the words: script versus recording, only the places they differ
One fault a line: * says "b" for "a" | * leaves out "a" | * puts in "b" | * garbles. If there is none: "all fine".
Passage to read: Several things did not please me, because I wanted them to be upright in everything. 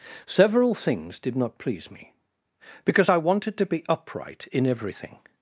* leaves out "them"